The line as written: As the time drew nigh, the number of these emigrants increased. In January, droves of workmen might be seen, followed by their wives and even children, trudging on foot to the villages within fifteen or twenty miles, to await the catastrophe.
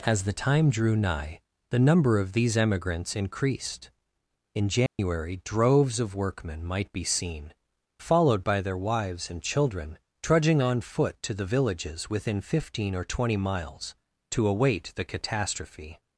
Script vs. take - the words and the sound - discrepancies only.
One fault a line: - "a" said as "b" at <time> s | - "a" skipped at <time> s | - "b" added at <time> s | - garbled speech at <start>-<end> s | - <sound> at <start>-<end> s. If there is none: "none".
- dropout at 4.9-5.0 s
- "even" skipped at 9.4 s